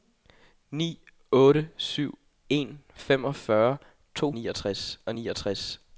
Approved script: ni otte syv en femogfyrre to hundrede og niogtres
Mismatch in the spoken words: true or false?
true